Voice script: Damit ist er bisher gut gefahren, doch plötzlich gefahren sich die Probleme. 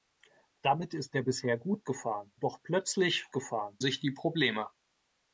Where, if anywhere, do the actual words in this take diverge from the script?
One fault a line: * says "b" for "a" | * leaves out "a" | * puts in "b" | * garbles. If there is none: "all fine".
all fine